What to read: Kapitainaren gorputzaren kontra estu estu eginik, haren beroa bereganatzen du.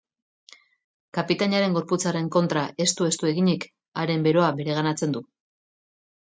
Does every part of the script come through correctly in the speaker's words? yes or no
yes